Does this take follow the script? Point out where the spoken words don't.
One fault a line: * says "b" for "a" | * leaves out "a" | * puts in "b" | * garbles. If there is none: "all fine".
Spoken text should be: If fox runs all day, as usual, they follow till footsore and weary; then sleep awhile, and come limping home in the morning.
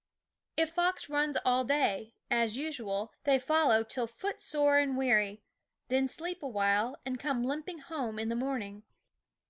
all fine